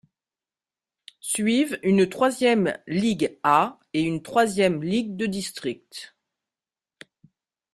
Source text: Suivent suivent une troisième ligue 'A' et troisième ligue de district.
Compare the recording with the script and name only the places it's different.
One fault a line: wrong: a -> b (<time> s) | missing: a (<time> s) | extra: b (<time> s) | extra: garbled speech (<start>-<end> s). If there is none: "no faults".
missing: suivent (1.8 s)
extra: une (4.0 s)